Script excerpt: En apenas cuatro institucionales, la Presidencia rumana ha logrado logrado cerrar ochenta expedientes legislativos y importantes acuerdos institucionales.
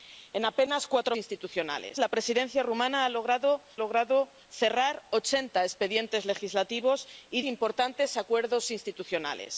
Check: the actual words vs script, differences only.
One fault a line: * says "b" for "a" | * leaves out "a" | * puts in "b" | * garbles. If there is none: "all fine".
all fine